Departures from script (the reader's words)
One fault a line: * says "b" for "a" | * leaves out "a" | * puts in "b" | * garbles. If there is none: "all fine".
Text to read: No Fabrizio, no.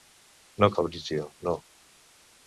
all fine